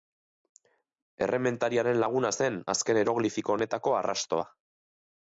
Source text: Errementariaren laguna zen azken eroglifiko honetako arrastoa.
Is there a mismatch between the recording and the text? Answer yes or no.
no